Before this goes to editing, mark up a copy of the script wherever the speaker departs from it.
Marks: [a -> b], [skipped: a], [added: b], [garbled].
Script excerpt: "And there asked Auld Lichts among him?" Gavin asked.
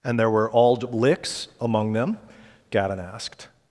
"And there [asked -> were] Auld Lichts among [him?" -> them] Gavin asked.